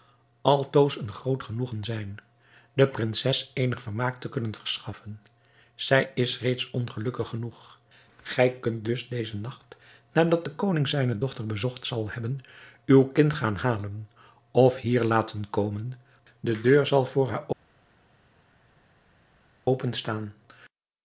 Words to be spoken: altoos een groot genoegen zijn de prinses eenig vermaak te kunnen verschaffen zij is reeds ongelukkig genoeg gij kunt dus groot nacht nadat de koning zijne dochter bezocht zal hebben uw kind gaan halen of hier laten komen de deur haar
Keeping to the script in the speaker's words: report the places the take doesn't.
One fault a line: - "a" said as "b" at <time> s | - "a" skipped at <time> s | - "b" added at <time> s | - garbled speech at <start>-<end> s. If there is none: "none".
- "groot" said as "dezen" at 9.1 s
- "zal voor" added at 16.9 s